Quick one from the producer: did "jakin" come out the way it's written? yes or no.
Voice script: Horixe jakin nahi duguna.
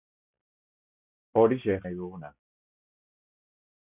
no